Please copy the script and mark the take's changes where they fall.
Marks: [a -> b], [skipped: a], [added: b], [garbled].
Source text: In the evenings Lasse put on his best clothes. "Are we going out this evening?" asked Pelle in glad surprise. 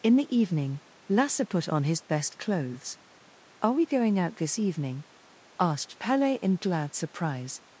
In the [evenings -> evening] Lasse put on his best clothes. "Are we going out this evening?" asked Pelle in glad surprise.